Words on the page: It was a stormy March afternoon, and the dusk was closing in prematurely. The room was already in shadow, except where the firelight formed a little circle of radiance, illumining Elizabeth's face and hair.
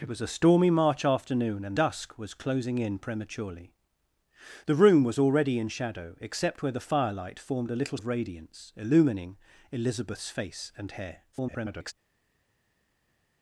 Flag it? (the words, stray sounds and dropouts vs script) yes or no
yes